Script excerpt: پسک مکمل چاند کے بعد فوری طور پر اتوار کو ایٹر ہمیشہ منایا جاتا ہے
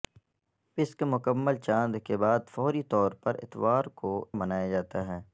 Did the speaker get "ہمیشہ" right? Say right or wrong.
wrong